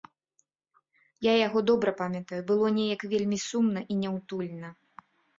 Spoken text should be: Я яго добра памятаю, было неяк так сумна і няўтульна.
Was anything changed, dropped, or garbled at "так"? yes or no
yes